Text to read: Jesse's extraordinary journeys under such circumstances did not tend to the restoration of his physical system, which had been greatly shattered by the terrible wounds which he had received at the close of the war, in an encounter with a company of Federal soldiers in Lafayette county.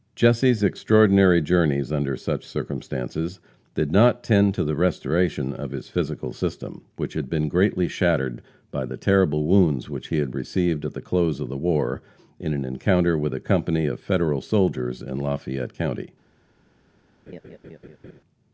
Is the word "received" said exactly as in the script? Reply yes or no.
yes